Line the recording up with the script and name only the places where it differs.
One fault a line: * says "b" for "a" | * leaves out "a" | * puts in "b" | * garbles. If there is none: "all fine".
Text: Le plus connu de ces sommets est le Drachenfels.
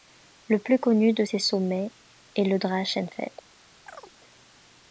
all fine